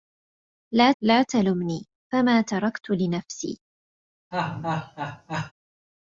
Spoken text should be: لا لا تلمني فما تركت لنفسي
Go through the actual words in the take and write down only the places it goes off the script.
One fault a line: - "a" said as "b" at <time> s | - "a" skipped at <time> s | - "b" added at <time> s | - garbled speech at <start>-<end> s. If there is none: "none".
none